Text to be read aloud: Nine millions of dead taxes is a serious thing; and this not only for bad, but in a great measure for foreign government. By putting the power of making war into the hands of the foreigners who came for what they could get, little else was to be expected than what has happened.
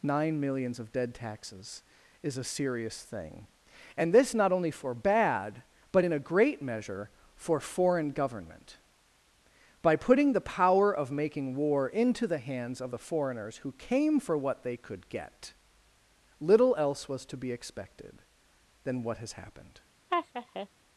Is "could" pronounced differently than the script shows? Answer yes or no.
no